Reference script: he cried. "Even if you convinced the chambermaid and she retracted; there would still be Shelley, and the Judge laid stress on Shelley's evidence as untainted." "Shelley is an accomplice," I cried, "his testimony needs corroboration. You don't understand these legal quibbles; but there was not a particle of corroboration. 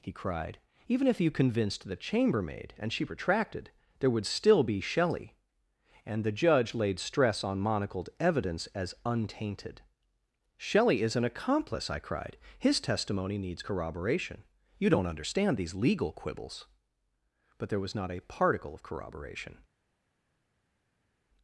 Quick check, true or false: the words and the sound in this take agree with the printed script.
false